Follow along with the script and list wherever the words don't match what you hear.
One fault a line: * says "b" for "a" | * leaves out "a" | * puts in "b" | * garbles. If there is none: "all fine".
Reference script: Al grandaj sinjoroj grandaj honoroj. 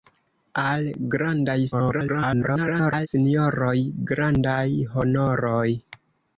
* garbles